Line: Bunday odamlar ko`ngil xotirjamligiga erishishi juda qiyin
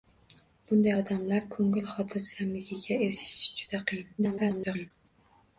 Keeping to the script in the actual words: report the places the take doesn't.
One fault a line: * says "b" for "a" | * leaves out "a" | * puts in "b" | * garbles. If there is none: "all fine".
* garbles